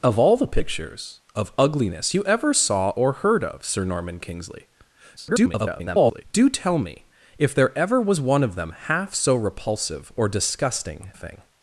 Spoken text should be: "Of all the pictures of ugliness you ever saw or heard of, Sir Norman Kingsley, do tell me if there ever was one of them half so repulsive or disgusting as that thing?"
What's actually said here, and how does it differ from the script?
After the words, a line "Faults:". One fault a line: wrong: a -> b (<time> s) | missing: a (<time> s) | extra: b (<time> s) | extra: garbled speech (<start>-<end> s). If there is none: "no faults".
"Of all the pictures of ugliness you ever saw or heard of, Sir Norman Kingsley, [garbled] do tell me if there ever was one of them half so repulsive or disgusting thing?"
Faults:
extra: garbled speech (5.2-6.2 s)
missing: as that (11.1 s)